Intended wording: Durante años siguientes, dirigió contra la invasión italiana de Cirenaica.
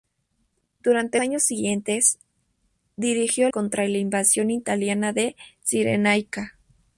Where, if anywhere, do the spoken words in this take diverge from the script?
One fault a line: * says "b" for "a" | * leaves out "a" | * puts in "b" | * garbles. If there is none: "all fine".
all fine